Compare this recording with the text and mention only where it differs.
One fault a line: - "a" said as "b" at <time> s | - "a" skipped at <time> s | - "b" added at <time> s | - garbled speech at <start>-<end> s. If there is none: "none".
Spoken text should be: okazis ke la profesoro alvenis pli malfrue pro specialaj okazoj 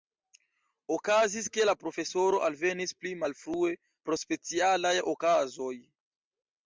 none